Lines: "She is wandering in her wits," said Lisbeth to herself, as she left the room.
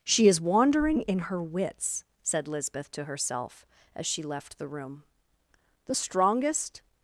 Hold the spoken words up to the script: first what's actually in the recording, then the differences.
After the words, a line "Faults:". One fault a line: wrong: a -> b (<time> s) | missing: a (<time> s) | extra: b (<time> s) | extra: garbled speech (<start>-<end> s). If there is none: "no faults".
"She is wandering in her wits," said Lisbeth to herself, as she left the room. The strongest
Faults:
extra: The strongest (5.8 s)